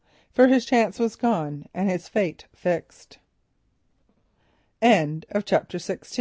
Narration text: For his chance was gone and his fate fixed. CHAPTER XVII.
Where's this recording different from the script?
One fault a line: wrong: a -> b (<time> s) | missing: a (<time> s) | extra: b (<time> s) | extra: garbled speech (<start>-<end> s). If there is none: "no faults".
no faults